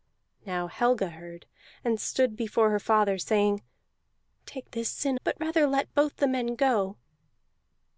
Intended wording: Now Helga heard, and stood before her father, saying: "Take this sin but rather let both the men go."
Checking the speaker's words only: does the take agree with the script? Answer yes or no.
yes